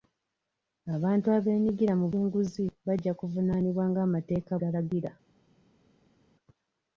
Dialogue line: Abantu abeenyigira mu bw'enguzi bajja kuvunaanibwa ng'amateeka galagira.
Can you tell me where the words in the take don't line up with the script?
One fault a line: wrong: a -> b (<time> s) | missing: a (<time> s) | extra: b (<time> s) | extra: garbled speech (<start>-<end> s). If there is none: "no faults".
no faults